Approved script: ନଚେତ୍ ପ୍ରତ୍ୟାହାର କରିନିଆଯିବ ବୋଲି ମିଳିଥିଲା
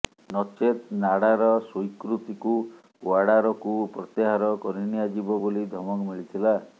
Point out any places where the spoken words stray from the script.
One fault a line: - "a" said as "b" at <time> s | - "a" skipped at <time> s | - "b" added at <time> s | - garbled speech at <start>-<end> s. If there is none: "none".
- "ନାଡାର ସ୍ୱୀକୃତିକୁ ଓ୍ବାଡାରକୁ" added at 1.0 s
- "ଧମକ" added at 5.7 s